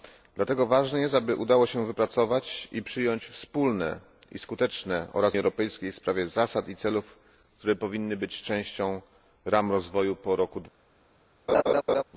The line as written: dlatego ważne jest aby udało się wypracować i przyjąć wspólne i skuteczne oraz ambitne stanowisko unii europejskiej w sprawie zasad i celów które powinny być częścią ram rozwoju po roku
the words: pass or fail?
fail